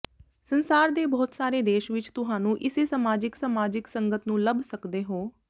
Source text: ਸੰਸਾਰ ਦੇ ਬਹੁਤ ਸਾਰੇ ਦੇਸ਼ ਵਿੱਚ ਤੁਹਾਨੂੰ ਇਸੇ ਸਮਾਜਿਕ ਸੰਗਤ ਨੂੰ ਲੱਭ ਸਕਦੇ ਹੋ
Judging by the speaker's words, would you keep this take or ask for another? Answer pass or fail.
fail